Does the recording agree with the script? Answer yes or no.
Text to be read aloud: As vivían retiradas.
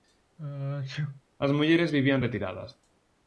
no